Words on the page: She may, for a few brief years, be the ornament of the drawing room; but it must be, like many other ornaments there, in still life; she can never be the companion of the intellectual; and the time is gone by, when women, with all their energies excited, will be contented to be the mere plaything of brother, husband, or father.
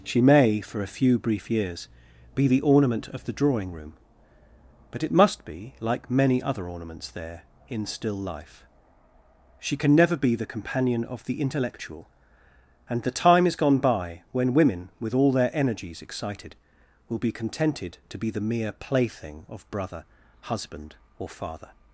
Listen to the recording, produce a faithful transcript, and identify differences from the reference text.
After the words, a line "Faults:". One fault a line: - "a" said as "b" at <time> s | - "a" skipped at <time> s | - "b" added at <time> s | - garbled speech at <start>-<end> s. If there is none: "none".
She may, for a few brief years, be the ornament of the drawing room; but it must be, like many other ornaments there, in still life; she can never be the companion of the intellectual; and the time is gone by, when women, with all their energies excited, will be contented to be the mere plaything of brother, husband, or father.
Faults:
none